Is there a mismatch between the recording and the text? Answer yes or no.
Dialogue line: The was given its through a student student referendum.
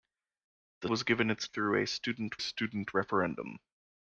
no